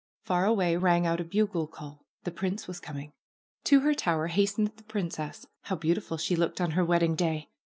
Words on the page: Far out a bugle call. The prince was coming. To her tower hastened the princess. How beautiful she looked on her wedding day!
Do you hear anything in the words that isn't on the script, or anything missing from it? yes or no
yes